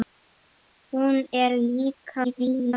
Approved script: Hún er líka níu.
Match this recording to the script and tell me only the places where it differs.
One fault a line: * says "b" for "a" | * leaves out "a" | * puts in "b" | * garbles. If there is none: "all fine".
* garbles